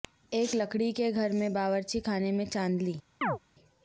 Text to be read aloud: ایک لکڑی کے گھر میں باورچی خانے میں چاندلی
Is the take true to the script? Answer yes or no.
yes